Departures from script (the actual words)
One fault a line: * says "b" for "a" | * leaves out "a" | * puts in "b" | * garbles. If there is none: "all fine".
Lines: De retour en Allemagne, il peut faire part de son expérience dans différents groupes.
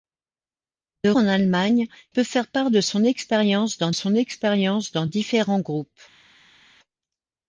* leaves out "retour"
* leaves out "il"
* puts in "son expérience dans"